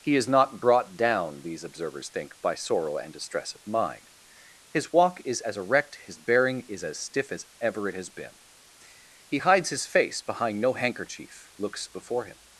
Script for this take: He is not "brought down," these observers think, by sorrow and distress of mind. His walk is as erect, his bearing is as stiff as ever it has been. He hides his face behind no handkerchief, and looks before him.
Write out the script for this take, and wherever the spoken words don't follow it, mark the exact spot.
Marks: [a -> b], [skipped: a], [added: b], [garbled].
He is not "brought down," these observers think, by sorrow and distress of mind. His walk is as erect, his bearing is as stiff as ever it has been. He hides his face behind no handkerchief, [skipped: and] looks before him.